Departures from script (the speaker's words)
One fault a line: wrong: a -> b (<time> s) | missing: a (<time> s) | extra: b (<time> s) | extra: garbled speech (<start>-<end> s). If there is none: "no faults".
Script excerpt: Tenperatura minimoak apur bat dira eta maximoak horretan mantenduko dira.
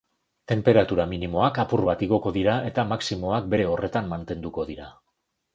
extra: igoko (2.1 s)
extra: bere (3.5 s)